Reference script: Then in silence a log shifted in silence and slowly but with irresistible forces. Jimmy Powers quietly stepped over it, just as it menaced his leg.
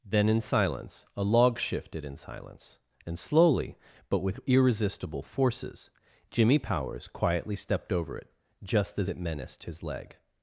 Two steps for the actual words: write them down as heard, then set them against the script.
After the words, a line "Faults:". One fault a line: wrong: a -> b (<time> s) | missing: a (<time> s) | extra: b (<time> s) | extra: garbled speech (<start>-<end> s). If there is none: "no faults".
Then in silence a log shifted in silence and slowly but with irresistible forces. Jimmy Powers quietly stepped over it, just as it menaced his leg.
Faults:
no faults